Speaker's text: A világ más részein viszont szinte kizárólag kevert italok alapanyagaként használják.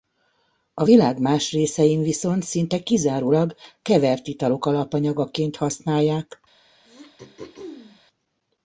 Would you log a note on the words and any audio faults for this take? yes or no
yes